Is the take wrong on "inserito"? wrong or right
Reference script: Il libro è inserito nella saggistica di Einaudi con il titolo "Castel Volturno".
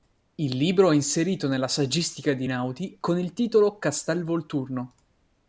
right